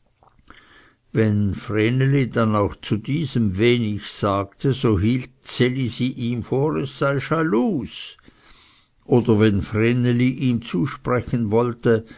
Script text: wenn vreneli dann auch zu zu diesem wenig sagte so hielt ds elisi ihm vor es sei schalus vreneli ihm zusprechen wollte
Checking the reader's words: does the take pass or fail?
fail